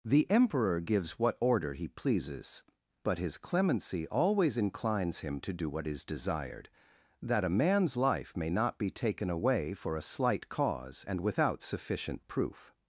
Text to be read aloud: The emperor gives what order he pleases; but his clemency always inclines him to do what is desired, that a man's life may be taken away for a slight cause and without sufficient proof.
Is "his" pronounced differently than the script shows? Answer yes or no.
no